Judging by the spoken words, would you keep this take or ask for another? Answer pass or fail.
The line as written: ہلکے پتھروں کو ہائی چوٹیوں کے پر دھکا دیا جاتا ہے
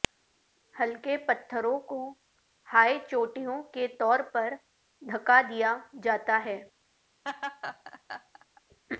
fail